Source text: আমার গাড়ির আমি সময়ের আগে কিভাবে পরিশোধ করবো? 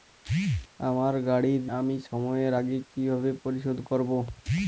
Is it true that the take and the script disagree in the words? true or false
false